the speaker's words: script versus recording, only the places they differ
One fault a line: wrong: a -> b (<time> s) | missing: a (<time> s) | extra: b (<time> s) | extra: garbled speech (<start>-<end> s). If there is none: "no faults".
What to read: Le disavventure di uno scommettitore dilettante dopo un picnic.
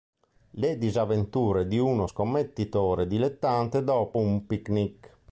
no faults